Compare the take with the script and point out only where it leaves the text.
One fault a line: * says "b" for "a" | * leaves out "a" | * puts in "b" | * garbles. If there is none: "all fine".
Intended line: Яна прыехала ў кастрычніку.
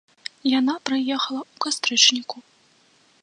all fine